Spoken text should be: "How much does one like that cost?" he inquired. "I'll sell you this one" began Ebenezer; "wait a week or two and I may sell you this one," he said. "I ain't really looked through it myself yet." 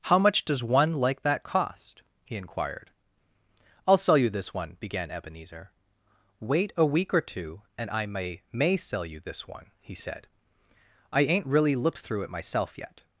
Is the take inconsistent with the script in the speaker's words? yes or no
yes